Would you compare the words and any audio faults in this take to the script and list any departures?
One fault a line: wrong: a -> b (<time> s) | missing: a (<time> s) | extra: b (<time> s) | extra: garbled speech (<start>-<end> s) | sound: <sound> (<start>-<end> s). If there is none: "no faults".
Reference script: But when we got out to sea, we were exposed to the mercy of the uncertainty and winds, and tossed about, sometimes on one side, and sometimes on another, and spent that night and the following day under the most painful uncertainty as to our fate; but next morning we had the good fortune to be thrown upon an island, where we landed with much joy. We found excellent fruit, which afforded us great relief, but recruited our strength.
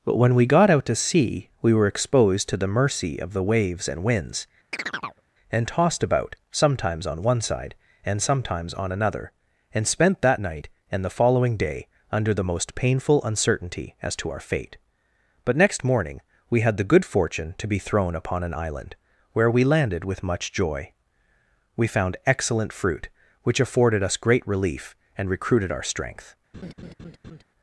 wrong: uncertainty -> waves (3.4 s)
sound: chirp (4.7-5.2 s)
wrong: but -> and (25.2 s)
sound: laugh (26.5-27.4 s)